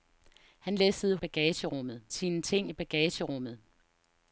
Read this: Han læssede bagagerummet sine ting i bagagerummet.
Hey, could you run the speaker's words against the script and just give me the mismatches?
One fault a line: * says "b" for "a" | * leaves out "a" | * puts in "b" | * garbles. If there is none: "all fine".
all fine